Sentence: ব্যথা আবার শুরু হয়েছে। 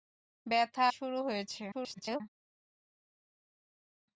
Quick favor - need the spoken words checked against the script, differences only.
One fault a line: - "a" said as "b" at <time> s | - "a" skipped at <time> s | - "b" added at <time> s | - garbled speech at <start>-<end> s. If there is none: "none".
- "আবার" skipped at 0.8 s
- garbled speech at 1.7-2.2 s